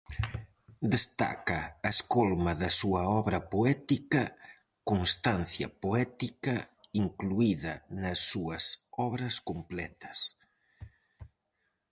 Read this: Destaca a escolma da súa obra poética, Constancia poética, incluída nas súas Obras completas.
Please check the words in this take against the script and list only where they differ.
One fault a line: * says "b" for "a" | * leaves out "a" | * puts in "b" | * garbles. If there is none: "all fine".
all fine